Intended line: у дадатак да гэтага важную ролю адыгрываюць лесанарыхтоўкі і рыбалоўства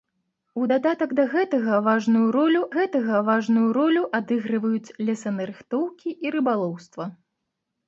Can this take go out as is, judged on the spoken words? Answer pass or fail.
fail